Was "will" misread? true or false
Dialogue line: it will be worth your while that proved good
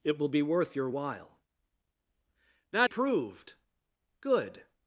false